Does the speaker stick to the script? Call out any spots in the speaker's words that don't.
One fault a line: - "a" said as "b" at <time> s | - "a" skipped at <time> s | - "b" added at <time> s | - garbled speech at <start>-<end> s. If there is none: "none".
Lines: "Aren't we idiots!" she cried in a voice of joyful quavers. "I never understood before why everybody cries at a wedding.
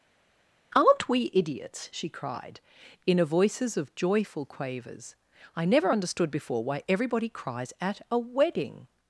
- "voice" said as "voices" at 3.2 s